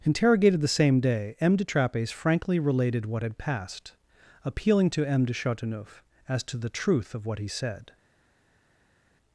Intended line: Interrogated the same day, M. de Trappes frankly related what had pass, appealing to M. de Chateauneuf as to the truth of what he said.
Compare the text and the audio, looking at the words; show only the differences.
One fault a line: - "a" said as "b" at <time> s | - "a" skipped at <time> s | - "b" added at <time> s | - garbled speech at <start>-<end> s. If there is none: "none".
- "pass" said as "passed" at 3.4 s